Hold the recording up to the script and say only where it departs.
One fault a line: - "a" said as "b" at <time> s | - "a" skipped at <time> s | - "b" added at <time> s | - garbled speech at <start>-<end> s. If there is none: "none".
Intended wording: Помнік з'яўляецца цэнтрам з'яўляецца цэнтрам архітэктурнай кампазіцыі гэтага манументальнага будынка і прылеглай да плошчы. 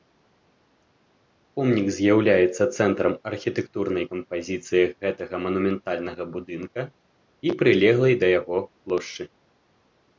- "з'яўляецца цэнтрам" skipped at 3.1 s
- "яго" added at 8.4 s